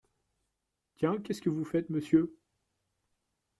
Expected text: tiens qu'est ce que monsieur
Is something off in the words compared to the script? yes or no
yes